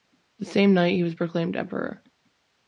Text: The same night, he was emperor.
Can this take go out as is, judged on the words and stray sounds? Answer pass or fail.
fail